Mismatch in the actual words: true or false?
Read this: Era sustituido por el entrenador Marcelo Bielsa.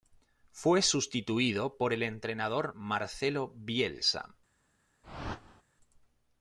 true